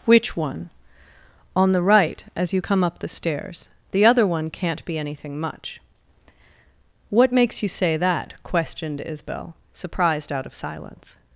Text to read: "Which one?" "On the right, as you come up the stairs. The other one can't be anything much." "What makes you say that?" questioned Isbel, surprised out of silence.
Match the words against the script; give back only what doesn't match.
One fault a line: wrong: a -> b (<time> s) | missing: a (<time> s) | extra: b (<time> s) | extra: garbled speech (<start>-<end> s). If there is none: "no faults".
no faults